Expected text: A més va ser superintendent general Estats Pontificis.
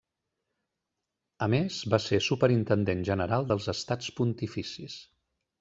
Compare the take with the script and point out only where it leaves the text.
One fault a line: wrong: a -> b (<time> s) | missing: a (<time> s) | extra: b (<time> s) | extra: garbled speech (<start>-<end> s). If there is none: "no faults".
extra: dels (3.5 s)